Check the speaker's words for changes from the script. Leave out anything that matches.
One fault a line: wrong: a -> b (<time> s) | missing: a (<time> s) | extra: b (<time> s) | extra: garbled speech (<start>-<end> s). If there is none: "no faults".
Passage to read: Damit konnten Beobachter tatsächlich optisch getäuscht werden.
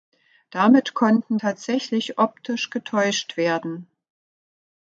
missing: Beobachter (1.4 s)